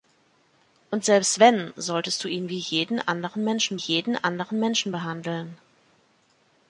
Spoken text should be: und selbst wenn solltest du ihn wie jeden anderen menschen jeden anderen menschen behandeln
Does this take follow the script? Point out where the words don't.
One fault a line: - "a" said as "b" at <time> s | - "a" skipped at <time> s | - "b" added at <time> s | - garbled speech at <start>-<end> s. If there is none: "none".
none